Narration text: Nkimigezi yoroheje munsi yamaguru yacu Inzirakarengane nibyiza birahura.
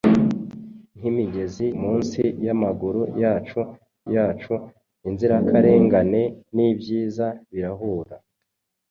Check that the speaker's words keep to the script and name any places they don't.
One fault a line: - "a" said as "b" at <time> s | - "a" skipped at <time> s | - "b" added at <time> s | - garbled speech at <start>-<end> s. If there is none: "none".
- "yoroheje" skipped at 1.6 s
- "yacu" added at 4.1 s